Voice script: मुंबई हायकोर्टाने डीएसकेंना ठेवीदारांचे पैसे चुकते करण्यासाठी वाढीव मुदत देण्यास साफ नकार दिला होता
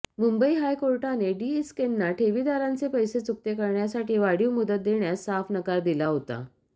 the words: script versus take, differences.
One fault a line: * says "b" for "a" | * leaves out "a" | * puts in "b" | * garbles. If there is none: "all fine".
all fine